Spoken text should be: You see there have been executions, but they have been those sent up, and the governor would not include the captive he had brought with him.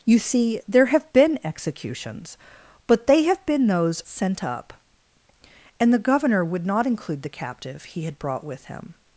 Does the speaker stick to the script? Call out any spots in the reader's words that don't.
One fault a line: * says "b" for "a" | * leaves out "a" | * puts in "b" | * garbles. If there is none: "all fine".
all fine